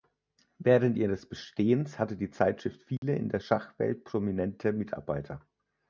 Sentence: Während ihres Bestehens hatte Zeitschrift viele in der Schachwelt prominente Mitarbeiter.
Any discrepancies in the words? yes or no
yes